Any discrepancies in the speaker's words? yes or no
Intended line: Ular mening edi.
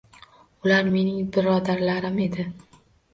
yes